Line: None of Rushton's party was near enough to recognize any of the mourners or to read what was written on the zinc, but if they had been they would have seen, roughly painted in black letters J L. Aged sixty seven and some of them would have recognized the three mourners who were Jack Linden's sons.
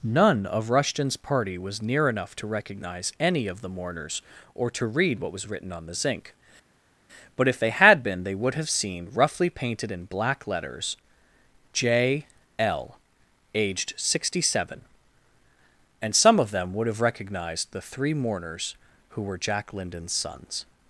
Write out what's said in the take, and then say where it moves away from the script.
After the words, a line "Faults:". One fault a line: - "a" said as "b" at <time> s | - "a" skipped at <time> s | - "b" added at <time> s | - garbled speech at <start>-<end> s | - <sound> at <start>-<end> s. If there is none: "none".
None of Rushton's party was near enough to recognize any of the mourners or to read what was written on the zinc, but if they had been they would have seen, roughly painted in black letters J L. Aged sixty seven and some of them would have recognized the three mourners who were Jack Linden's sons.
Faults:
none